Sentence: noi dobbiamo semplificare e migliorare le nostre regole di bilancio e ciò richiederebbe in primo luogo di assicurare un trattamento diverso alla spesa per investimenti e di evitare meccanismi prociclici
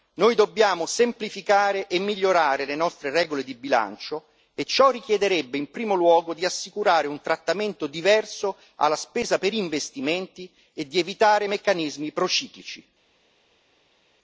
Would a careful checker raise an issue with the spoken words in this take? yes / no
no